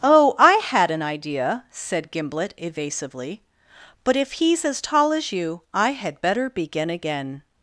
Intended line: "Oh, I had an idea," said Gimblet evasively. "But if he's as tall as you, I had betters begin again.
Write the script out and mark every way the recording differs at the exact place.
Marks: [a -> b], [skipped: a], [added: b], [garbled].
"Oh, I had an idea," said Gimblet evasively. "But if he's as tall as you, I had [betters -> better] begin again.